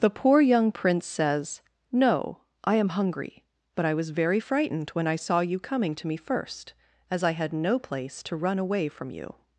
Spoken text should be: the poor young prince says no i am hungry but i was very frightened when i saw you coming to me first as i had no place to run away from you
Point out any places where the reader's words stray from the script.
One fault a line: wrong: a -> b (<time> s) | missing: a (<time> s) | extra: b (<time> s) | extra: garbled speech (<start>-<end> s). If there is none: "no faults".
no faults